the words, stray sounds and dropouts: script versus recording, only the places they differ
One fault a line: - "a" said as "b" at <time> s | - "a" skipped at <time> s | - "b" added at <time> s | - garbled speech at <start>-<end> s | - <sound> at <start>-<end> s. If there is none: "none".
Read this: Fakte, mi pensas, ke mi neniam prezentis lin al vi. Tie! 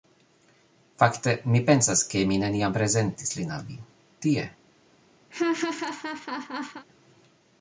- laugh at 5.3-6.8 s